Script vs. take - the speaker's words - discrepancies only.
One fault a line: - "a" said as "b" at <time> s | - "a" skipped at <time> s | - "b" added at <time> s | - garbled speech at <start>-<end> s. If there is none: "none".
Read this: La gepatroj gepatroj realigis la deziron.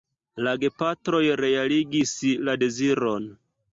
- "gepatroj" skipped at 1.2 s